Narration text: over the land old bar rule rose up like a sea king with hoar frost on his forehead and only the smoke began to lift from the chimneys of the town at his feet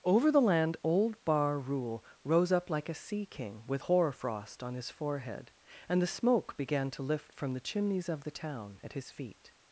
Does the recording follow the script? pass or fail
fail